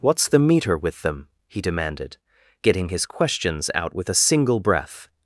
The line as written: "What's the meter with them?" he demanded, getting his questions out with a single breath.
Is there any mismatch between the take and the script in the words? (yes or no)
no